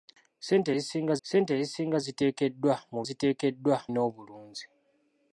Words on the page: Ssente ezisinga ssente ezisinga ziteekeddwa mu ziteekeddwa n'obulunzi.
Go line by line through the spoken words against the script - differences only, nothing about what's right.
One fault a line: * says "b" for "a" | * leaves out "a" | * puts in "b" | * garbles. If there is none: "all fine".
all fine